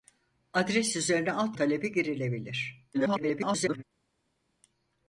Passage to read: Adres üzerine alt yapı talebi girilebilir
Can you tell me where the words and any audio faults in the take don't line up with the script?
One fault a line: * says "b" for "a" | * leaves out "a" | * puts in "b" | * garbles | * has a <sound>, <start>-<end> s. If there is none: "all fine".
* leaves out "yapı"
* garbles